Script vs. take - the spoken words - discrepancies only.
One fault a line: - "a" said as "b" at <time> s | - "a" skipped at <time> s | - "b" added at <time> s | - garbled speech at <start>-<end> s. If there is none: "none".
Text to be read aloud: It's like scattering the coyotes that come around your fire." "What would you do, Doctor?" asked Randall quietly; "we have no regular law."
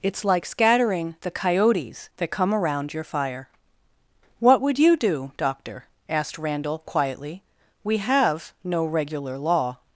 none